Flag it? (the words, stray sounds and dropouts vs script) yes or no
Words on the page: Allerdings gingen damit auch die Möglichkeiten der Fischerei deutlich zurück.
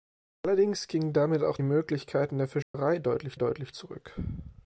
yes